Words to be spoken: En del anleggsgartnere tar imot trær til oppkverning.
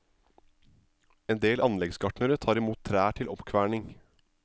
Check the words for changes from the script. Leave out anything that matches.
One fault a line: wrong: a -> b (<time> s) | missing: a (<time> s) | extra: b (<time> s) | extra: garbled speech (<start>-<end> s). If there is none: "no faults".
no faults